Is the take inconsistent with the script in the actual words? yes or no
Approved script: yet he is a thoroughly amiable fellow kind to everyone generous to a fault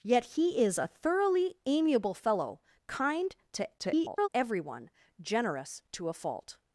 yes